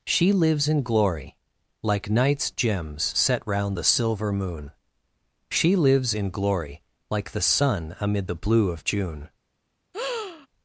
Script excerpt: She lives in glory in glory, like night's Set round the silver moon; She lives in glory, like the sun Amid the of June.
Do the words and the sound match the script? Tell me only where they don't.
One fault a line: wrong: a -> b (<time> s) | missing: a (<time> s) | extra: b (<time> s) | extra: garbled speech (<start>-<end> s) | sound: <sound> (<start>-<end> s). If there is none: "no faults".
missing: in glory (1.4 s)
extra: gems (2.5 s)
extra: blue (8.4 s)
sound: breath (9.9-10.5 s)